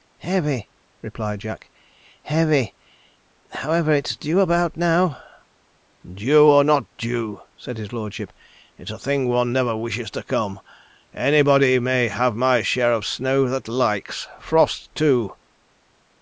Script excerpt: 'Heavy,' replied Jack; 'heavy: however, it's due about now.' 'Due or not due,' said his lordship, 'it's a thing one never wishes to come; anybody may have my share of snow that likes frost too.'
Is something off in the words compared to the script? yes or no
no